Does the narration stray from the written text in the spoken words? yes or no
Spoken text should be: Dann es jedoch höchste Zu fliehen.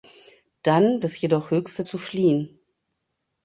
no